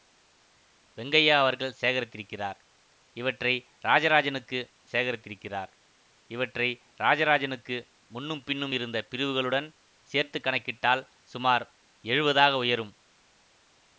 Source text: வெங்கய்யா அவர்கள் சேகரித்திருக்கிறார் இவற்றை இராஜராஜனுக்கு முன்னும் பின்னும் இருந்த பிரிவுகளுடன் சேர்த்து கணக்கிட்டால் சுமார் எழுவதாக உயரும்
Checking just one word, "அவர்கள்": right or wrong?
right